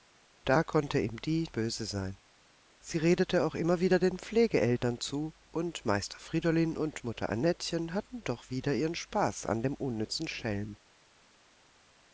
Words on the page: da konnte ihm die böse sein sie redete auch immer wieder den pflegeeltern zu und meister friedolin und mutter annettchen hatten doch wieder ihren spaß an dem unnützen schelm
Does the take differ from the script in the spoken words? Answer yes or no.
no